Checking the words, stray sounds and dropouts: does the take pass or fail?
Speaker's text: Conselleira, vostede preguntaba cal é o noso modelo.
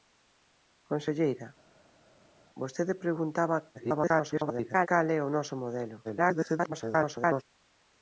fail